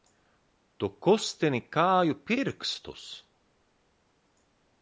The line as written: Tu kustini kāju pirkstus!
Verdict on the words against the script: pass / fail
pass